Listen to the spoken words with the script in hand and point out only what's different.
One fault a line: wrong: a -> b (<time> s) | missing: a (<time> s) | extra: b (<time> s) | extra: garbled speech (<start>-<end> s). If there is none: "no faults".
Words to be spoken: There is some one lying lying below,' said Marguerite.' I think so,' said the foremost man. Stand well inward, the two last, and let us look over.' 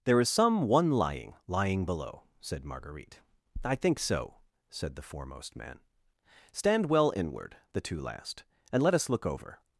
no faults